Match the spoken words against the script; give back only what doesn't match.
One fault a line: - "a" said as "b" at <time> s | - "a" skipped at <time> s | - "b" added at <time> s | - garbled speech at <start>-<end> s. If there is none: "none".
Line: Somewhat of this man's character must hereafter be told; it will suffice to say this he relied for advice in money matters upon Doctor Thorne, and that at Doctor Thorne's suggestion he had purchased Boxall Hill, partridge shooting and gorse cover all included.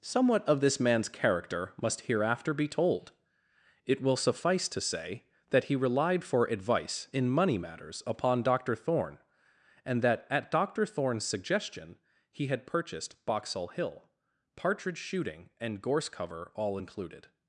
- "this" said as "that" at 5.5 s